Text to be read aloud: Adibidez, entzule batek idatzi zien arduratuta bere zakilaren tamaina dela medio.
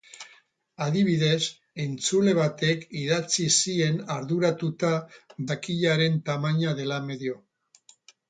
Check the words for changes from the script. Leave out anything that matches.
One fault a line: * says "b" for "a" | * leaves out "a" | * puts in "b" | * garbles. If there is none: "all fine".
* leaves out "bere"